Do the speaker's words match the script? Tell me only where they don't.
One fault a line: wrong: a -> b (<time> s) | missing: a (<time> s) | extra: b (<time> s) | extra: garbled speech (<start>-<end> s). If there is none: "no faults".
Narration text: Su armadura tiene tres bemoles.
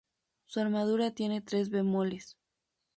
no faults